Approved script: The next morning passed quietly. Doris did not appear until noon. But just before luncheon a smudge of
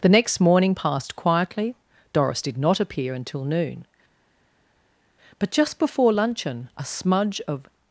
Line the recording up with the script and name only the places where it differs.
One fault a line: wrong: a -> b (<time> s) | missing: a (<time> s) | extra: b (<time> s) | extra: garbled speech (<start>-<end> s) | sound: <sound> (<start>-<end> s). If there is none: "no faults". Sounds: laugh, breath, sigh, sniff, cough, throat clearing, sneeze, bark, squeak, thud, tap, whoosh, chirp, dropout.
no faults